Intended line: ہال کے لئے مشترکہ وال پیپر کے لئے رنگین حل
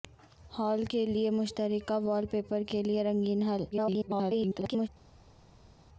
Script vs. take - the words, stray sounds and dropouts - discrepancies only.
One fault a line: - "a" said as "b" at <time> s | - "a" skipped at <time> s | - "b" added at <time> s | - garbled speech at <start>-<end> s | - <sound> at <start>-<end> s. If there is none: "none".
- garbled speech at 3.7-4.9 s